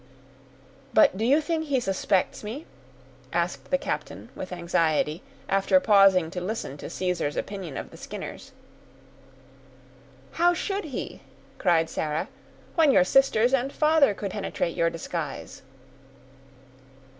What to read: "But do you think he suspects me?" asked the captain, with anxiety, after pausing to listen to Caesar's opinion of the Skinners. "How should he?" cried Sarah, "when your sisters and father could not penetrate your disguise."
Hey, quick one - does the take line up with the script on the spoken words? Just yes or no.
no